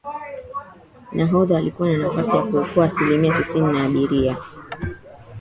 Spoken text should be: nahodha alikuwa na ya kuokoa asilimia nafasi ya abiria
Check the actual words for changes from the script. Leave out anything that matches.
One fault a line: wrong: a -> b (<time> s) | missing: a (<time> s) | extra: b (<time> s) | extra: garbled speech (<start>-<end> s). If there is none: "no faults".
extra: nafasi (2.0 s)
wrong: nafasi -> tisini (3.3 s)